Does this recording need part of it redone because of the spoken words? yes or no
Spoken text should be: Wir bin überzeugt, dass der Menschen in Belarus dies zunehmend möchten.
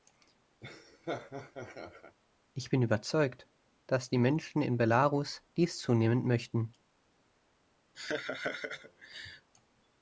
yes